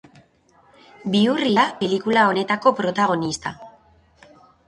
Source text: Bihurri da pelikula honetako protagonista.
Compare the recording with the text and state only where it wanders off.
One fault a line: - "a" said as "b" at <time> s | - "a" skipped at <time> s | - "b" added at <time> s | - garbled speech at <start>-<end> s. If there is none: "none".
none